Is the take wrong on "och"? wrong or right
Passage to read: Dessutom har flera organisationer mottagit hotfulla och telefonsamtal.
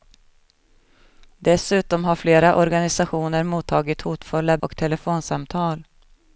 right